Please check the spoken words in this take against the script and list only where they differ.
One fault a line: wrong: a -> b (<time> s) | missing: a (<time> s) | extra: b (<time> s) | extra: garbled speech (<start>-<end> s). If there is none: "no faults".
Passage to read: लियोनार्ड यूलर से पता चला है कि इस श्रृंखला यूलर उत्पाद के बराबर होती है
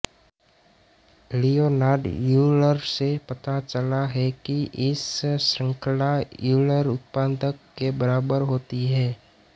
no faults